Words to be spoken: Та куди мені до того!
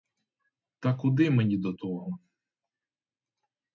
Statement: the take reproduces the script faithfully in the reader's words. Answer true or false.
true